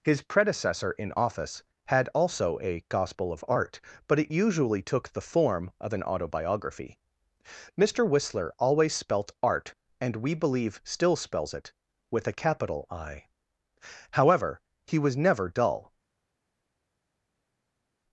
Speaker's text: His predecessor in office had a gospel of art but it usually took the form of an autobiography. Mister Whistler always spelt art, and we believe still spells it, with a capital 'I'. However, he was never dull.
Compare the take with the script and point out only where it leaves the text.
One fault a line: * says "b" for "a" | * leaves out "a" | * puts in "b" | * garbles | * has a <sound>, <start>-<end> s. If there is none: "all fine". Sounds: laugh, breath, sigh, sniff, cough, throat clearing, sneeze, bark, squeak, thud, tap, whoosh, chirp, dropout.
* puts in "also"